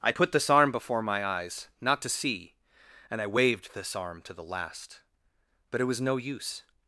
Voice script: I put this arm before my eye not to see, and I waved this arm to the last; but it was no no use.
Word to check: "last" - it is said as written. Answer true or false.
true